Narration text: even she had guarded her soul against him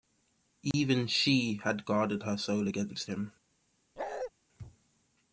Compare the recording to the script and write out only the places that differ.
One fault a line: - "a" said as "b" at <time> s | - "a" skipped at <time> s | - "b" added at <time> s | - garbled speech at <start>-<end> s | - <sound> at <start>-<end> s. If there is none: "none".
- dropout at 0.7-0.7 s
- bark at 4.0-4.3 s